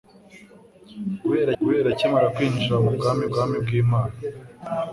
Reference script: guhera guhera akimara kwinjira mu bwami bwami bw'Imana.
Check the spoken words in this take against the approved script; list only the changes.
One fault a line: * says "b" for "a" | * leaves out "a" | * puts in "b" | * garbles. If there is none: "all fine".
all fine